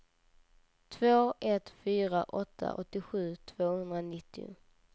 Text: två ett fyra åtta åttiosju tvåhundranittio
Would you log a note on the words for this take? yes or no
no